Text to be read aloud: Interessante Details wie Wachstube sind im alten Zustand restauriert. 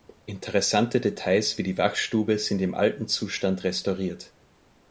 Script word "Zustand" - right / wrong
right